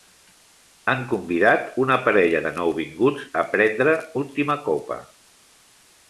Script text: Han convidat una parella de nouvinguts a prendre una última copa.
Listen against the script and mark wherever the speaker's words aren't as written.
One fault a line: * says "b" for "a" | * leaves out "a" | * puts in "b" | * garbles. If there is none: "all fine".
* leaves out "una"